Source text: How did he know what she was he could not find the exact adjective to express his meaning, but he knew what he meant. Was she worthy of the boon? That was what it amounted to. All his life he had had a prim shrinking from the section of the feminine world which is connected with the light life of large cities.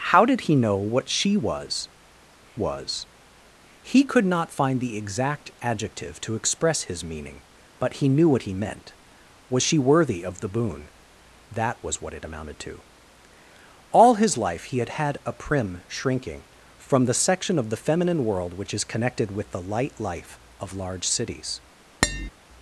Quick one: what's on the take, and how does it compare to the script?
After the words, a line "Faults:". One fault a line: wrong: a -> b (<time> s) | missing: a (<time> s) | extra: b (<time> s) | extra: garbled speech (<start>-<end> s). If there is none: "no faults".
How did he know what she was was he could not find the exact adjective to express his meaning, but he knew what he meant. Was she worthy of the boon? That was what it amounted to. All his life he had had a prim shrinking from the section of the feminine world which is connected with the light life of large cities.
Faults:
extra: was (2.5 s)